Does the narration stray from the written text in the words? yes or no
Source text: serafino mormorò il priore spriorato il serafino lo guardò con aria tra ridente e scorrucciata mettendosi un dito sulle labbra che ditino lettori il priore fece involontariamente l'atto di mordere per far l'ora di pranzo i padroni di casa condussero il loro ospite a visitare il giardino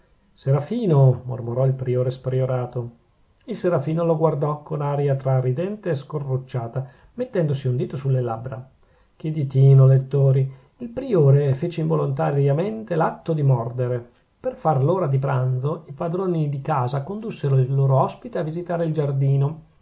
no